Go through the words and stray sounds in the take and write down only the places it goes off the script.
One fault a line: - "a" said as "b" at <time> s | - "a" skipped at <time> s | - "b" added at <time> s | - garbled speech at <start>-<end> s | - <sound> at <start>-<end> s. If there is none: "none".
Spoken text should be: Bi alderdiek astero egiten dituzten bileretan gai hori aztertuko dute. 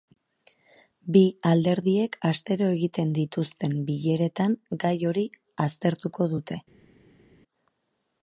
none